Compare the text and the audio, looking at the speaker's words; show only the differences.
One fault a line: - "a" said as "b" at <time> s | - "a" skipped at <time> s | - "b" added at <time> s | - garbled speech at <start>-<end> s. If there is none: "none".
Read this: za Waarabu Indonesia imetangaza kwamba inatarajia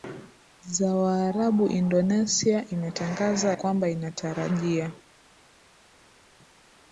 none